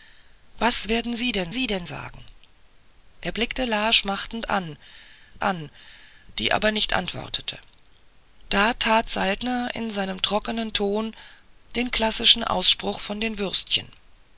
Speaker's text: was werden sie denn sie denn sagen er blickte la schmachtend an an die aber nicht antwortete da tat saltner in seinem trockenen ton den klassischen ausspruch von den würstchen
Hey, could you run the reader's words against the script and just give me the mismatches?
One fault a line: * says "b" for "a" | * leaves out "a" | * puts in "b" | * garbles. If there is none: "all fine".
all fine